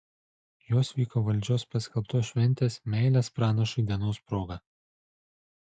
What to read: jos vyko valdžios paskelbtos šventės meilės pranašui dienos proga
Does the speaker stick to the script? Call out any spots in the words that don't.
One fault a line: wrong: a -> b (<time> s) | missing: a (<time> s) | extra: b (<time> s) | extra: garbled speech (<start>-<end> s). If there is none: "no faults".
no faults